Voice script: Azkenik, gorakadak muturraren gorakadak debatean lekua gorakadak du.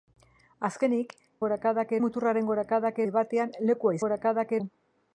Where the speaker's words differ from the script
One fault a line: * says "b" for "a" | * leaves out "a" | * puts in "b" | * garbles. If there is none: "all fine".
all fine